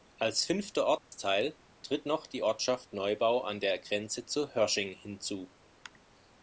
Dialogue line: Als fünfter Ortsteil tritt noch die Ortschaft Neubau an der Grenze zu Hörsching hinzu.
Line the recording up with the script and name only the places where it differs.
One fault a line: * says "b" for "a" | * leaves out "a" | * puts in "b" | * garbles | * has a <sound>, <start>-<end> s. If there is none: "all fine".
* has a dropout, 1.0-1.1 s